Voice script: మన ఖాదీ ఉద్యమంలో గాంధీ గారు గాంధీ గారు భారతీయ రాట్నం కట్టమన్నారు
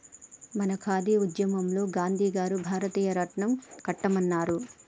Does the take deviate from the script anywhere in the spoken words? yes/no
yes